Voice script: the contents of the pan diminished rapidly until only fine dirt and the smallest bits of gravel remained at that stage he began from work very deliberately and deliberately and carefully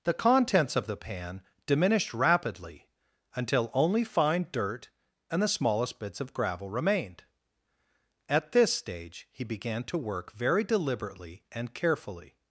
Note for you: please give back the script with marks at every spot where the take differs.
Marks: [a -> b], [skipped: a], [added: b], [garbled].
the contents of the pan diminished rapidly until only fine dirt and the smallest bits of gravel remained at [that -> this] stage he began [from -> to] work very deliberately and [skipped: deliberately and] carefully